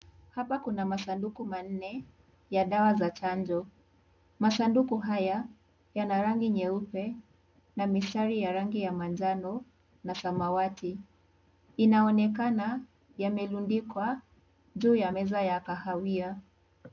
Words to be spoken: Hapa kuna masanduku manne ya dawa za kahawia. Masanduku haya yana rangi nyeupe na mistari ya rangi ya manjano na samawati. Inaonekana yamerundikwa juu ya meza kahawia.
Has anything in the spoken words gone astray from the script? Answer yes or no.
yes